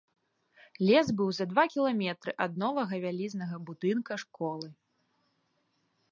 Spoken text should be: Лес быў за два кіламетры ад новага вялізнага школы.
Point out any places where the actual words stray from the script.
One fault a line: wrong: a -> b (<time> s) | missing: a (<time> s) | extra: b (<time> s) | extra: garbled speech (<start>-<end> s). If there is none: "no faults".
extra: будынка (3.7 s)